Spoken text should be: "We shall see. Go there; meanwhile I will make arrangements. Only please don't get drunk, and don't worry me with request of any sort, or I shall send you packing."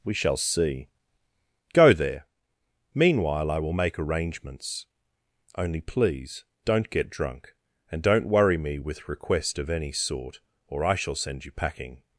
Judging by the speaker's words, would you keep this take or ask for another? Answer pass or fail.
pass